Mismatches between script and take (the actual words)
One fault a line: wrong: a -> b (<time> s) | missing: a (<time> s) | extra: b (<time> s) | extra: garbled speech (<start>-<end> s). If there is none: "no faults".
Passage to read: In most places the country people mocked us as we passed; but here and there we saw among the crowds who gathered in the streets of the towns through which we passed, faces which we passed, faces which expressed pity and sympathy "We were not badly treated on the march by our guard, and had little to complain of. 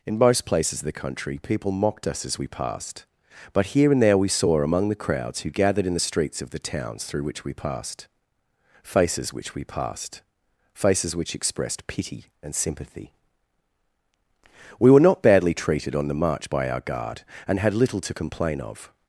extra: of (0.8 s)